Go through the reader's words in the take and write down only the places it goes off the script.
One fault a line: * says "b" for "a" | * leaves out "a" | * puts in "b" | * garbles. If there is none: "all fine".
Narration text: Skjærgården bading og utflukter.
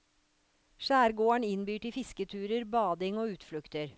* puts in "innbyr til fisketurer"